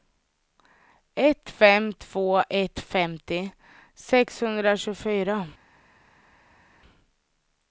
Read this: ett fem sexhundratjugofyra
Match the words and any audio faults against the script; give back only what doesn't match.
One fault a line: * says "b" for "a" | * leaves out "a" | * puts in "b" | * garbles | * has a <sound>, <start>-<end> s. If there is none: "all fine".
* puts in "två ett femtio"